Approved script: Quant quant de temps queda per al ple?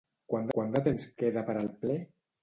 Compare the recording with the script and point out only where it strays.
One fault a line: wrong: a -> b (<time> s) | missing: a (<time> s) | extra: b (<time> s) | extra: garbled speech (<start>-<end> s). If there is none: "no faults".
no faults